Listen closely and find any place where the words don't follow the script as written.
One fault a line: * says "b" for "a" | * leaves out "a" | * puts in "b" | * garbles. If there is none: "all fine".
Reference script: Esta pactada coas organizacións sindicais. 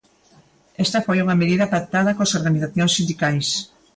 * puts in "foi unha medida"